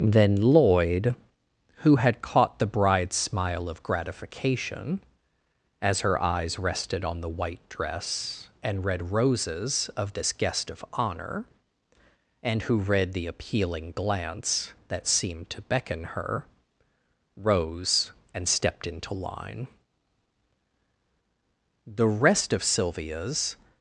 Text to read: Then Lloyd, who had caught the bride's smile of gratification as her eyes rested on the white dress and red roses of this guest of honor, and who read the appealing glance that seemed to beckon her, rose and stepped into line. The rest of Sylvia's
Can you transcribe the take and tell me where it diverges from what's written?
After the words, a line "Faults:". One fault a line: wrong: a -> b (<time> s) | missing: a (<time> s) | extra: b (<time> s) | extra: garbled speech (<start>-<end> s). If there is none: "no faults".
Then Lloyd, who had caught the bride's smile of gratification as her eyes rested on the white dress and red roses of this guest of honor, and who read the appealing glance that seemed to beckon her, rose and stepped into line. The rest of Sylvia's
Faults:
no faults